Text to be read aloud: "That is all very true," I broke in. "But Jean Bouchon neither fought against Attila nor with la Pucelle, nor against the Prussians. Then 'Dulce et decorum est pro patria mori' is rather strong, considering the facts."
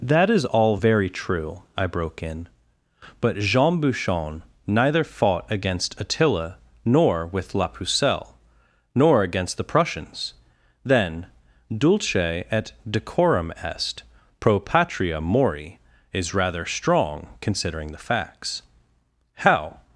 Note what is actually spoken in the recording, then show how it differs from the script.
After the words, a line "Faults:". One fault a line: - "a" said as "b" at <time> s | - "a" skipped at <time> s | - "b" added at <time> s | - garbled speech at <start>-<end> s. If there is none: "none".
"That is all very true," I broke in. "But Jean Bouchon neither fought against Attila nor with la Pucelle, nor against the Prussians. Then 'Dulce et decorum est pro patria mori' is rather strong, considering the facts." "How
Faults:
- "How" added at 19.4 s